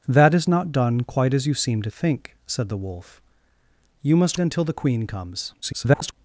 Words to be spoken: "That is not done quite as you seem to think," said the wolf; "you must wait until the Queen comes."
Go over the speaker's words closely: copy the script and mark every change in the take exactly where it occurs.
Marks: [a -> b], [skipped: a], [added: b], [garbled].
"That is not done quite as you seem to think," said the wolf; "you must [skipped: wait] until the Queen comes." [garbled]